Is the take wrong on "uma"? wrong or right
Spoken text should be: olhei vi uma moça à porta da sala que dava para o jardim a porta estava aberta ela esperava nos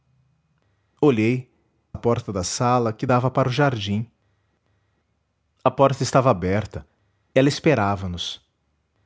wrong